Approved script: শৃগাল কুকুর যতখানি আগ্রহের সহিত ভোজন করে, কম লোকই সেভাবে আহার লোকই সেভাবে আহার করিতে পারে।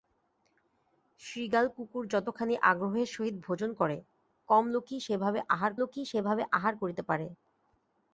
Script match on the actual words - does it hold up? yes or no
yes